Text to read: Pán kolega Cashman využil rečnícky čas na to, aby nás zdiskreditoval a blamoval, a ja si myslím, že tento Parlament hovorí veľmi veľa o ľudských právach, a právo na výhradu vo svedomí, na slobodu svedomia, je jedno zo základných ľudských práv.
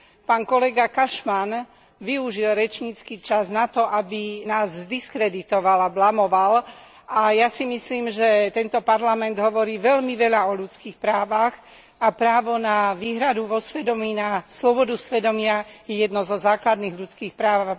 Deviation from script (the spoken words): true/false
false